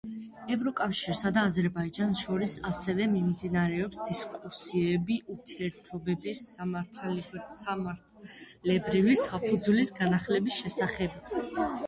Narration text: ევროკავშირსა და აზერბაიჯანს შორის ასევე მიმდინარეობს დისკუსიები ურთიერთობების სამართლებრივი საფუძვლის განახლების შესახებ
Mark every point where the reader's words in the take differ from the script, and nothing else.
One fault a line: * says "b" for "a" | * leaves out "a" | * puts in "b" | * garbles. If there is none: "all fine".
all fine